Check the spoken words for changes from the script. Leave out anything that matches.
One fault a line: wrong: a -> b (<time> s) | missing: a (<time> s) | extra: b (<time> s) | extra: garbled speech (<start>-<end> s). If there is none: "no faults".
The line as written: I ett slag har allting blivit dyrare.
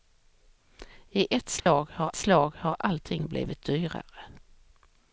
extra: slag har (2.1 s)